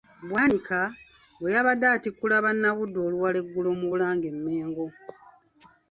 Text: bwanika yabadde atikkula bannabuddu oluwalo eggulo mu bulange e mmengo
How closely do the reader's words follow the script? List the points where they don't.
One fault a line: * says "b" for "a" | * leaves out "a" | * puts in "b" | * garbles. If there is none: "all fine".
* puts in "bwe"